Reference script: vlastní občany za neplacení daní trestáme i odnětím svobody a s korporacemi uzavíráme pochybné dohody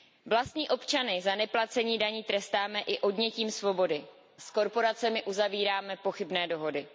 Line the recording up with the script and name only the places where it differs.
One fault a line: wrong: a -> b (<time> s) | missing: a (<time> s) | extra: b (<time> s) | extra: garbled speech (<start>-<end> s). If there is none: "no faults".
missing: a (4.0 s)